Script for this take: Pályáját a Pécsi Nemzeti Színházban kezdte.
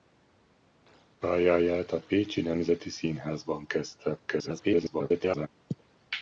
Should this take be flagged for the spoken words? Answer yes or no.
yes